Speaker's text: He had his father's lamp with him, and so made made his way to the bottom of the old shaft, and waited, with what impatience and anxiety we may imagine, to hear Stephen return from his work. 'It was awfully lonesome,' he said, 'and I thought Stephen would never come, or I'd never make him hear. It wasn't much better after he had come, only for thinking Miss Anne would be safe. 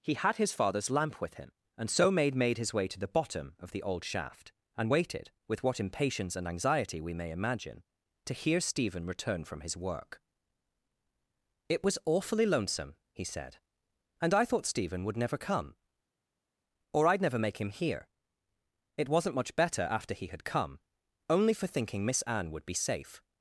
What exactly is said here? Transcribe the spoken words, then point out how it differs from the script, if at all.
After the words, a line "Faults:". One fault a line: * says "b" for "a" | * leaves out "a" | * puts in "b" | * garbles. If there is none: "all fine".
He had his father's lamp with him, and so made made his way to the bottom of the old shaft, and waited, with what impatience and anxiety we may imagine, to hear Stephen return from his work. 'It was awfully lonesome,' he said, 'and I thought Stephen would never come, or I'd never make him hear. It wasn't much better after he had come, only for thinking Miss Anne would be safe.
Faults:
all fine